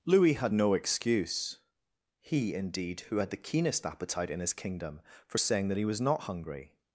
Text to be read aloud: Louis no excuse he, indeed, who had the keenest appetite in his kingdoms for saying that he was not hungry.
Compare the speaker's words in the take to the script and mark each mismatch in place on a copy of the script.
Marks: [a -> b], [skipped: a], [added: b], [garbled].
Louis [added: had] no excuse he, indeed, who had the keenest appetite in his [kingdoms -> kingdom] for saying that he was not hungry.